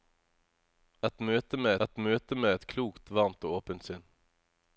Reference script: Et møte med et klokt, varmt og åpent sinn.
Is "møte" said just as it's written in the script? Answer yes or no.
yes